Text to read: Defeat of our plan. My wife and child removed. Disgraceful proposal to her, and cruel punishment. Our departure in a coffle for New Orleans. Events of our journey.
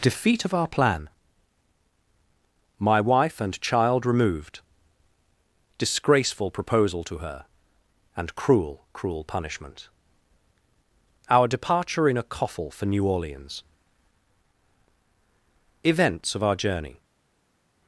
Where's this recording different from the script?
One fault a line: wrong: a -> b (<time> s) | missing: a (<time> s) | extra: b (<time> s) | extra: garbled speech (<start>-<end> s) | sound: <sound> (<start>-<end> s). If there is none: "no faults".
extra: cruel (8.9 s)